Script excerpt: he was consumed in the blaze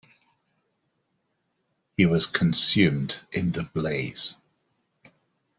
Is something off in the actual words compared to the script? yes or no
no